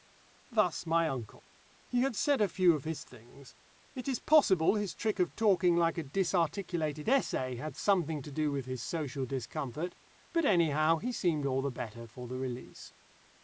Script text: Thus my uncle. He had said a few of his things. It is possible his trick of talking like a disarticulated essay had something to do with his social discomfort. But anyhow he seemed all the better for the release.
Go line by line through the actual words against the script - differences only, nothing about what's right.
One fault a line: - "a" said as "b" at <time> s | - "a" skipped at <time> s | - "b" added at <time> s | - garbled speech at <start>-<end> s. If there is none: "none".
none